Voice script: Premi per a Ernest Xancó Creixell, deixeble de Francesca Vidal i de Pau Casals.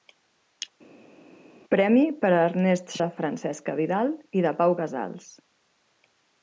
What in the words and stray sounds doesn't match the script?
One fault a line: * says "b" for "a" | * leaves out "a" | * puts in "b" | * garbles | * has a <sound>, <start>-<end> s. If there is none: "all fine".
* leaves out "Xancó Creixell deixeble"